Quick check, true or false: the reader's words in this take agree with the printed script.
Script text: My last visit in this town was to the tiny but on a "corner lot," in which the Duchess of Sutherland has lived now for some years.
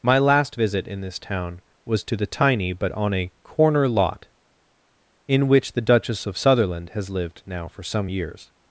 true